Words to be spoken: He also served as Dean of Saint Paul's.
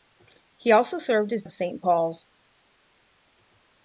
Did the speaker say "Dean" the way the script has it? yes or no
no